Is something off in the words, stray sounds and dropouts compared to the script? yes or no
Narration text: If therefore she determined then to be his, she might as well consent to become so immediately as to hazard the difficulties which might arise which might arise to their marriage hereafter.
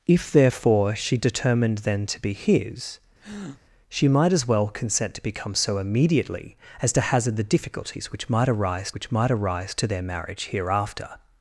yes